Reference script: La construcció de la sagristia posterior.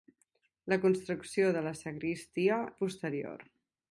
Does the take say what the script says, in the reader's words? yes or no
yes